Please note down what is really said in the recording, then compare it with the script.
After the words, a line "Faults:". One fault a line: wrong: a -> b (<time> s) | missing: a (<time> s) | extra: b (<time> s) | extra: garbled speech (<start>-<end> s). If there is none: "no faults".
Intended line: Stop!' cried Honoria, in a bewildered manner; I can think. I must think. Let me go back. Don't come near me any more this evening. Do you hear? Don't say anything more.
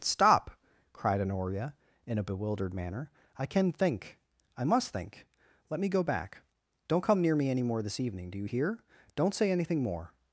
Stop!' cried Honoria, in a bewildered manner; I can think. I must think. Let me go back. Don't come near me any more this evening. Do you hear? Don't say anything more.
Faults:
no faults